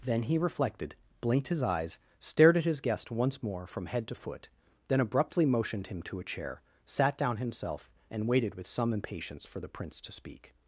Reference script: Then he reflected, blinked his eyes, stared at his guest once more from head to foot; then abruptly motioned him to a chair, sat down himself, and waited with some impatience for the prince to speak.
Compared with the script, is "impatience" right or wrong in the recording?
right